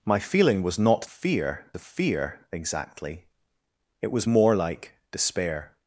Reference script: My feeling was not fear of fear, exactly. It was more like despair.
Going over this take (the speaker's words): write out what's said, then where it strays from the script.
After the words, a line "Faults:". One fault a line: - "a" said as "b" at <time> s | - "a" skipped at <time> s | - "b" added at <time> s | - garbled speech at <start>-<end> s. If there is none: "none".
My feeling was not fear of fear, exactly. It was more like despair.
Faults:
none